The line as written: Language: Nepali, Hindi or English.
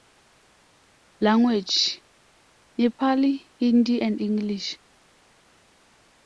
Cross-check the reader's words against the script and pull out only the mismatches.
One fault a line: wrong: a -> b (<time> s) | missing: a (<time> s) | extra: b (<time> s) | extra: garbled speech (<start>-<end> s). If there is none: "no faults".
wrong: or -> and (4.0 s)